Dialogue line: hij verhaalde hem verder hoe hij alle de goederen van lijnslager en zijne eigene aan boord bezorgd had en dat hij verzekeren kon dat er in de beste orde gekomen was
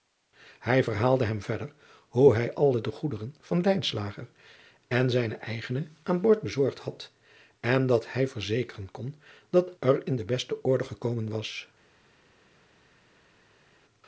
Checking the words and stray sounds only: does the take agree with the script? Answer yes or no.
yes